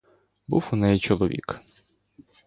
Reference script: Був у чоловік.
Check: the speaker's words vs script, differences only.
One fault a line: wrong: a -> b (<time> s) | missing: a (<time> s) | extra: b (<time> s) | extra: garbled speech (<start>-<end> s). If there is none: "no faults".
extra: неї (0.8 s)